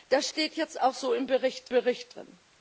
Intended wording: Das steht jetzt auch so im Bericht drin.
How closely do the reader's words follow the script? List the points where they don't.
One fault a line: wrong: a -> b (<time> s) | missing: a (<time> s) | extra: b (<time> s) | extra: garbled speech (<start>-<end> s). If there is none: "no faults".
extra: Bericht (1.7 s)